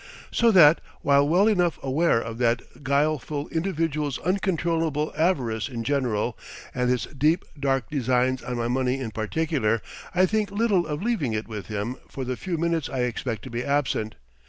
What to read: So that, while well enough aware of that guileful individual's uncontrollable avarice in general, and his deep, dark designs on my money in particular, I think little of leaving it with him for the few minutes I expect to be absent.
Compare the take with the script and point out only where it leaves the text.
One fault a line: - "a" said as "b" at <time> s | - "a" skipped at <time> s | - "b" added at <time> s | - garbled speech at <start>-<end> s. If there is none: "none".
none